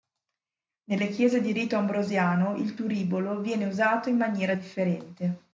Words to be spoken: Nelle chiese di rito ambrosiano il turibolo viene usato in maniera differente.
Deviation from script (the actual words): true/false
false